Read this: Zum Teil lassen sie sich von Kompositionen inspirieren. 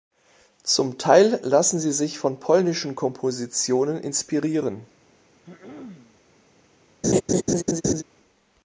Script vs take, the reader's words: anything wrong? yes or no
yes